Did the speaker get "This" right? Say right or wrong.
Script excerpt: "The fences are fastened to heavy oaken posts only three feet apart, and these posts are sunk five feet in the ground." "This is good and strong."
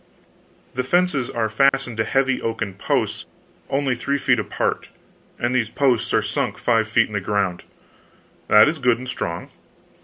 wrong